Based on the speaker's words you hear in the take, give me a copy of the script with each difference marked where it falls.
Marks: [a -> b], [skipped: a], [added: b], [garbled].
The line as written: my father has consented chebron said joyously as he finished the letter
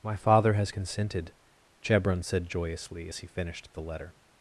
my father has consented chebron said joyously as he finished the letter